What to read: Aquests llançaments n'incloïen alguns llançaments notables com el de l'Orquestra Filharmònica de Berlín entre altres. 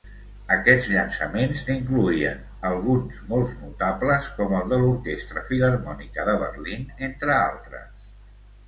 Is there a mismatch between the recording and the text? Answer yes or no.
yes